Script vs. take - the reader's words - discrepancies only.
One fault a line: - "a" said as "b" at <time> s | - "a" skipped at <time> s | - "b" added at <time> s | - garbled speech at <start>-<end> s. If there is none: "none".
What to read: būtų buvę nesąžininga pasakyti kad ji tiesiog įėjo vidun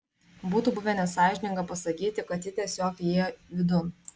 none